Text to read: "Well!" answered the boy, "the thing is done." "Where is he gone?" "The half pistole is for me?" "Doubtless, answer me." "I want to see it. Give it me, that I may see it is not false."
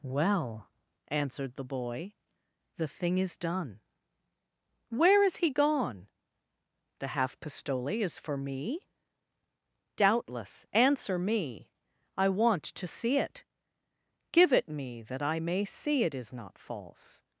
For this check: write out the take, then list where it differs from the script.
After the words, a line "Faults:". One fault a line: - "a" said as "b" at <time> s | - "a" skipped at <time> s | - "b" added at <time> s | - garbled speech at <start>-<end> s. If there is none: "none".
"Well!" answered the boy, "the thing is done." "Where is he gone?" "The half pistole is for me?" "Doubtless, answer me." "I want to see it. Give it me, that I may see it is not false."
Faults:
none